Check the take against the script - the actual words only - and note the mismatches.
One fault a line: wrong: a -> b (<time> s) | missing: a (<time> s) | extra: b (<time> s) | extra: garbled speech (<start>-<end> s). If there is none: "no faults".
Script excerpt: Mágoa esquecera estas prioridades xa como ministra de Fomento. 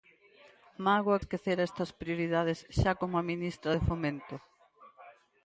no faults